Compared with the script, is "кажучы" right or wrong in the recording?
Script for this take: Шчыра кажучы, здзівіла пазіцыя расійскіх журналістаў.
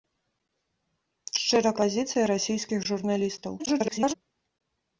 wrong